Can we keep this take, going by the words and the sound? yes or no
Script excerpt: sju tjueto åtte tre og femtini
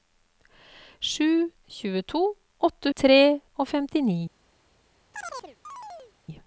no